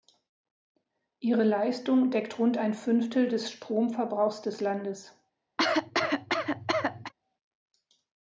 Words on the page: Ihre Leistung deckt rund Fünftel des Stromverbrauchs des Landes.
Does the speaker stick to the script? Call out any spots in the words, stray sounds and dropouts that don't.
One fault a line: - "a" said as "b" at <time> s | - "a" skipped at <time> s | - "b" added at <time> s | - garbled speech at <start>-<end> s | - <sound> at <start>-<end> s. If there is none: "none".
- "ein" added at 2.6 s
- cough at 5.6-7.1 s